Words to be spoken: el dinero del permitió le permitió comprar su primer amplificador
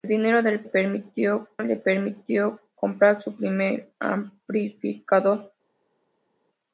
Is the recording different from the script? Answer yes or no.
no